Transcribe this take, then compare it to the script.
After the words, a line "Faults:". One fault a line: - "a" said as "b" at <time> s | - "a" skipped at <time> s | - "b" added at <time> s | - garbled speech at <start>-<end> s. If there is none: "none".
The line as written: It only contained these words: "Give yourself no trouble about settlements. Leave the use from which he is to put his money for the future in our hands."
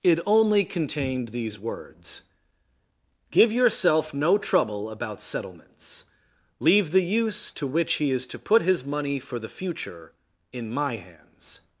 It only contained these words: "Give yourself no trouble about settlements. Leave the use to which he is to put his money for the future in my hands."
Faults:
- "from" said as "to" at 7.5 s
- "our" said as "my" at 10.7 s